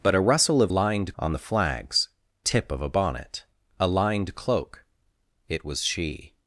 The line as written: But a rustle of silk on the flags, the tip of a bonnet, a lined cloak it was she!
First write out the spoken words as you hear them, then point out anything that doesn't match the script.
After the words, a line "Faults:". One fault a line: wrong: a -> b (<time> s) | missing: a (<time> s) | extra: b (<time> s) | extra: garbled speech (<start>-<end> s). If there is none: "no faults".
But a rustle of lined on the flags, tip of a bonnet, a lined cloak it was she!
Faults:
wrong: silk -> lined (0.7 s)
missing: the (2.1 s)